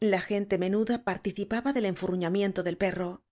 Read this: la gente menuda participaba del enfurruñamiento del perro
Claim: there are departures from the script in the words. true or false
false